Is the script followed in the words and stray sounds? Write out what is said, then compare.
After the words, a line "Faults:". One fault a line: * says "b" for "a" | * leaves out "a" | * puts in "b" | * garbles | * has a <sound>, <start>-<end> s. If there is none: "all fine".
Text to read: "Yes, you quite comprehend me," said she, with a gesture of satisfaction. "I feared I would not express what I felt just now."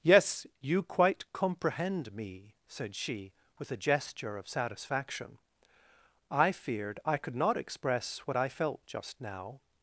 "Yes, you quite comprehend me," said she, with a gesture of satisfaction. "I feared I could not express what I felt just now."
Faults:
* says "could" for "would"